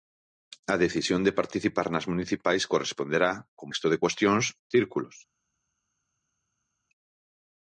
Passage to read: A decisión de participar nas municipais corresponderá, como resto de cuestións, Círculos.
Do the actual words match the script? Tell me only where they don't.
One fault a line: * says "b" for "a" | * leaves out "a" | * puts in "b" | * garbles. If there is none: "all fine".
all fine